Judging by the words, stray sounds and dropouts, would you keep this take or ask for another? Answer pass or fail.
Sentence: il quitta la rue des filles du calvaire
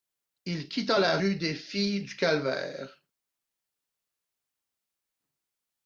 pass